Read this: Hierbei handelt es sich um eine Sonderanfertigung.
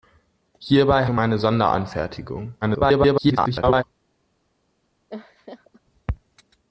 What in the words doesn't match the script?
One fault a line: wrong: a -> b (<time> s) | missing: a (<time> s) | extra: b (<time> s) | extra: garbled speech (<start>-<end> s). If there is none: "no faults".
missing: handelt es sich (1.1 s)
extra: garbled speech (2.6-3.8 s)